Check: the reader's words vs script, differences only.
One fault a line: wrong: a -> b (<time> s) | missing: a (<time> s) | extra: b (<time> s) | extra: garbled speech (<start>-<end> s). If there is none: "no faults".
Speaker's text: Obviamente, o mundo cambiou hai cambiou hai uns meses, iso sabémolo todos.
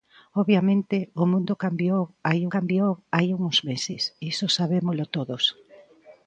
no faults